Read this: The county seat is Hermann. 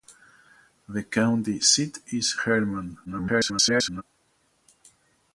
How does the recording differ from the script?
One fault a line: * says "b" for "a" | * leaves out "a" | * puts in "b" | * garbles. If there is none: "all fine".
* garbles